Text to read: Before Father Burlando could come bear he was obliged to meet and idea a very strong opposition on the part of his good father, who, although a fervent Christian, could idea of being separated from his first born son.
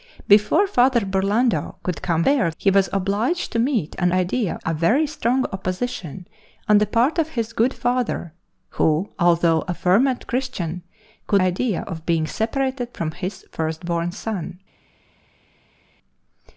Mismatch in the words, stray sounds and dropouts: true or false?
false